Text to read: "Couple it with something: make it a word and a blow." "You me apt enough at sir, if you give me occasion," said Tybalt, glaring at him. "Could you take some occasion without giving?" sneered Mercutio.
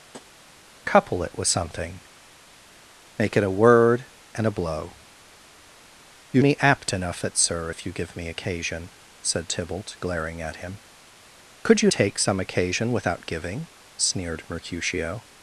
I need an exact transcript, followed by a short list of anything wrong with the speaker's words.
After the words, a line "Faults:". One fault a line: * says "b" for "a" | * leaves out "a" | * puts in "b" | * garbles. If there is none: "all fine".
"Couple it with something: make it a word and a blow." "You me apt enough at sir, if you give me occasion," said Tybalt, glaring at him. "Could you take some occasion without giving?" sneered Mercutio.
Faults:
all fine